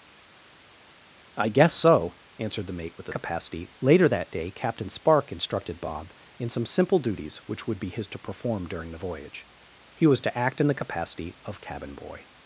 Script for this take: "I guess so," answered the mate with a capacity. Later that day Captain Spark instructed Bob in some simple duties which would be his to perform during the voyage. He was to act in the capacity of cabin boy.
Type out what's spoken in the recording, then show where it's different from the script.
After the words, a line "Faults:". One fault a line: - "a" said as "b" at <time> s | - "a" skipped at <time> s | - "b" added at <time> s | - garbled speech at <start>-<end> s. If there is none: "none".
"I guess so," answered the mate with a capacity. Later that day Captain Spark instructed Bob in some simple duties which would be his to perform during the voyage. He was to act in the capacity of cabin boy.
Faults:
none